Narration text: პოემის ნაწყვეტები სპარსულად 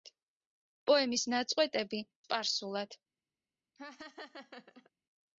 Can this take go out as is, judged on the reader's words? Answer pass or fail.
pass